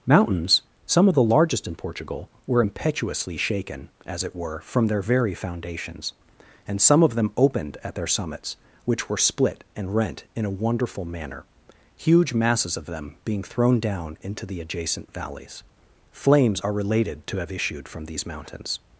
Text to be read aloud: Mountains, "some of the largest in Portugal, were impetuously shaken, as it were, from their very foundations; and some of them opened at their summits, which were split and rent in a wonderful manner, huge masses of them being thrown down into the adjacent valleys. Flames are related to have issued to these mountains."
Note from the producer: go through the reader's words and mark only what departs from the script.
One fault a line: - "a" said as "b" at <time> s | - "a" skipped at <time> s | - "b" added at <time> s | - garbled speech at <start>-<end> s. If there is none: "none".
- "to" said as "from" at 17.9 s